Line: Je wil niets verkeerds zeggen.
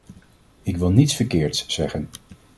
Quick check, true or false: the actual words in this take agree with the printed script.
false